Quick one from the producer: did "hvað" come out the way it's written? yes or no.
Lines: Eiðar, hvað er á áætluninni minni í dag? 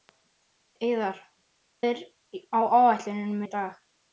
no